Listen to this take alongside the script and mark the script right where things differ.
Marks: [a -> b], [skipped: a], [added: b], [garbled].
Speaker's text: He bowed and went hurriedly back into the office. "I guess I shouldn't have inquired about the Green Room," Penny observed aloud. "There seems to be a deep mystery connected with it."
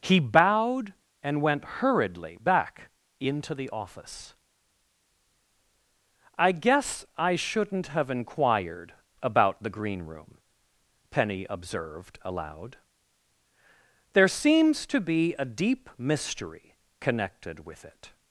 He bowed and went hurriedly back into the office. "I guess I shouldn't have inquired about the Green Room," Penny observed aloud. "There seems to be a deep mystery connected with it."